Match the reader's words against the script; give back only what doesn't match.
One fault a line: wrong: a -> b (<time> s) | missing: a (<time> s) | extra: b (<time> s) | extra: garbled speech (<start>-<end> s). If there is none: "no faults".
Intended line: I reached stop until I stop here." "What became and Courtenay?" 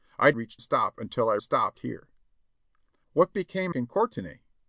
no faults